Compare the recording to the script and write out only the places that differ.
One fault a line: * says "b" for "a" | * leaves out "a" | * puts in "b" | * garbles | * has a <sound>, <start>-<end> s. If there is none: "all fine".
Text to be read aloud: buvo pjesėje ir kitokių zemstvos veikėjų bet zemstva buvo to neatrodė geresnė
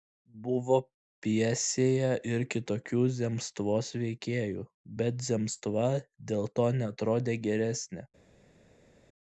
* says "dėl" for "buvo"